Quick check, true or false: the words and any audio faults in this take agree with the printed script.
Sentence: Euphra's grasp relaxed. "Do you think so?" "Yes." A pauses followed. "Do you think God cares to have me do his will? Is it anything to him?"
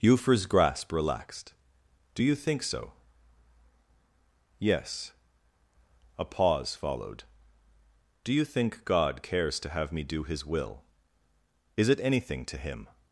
false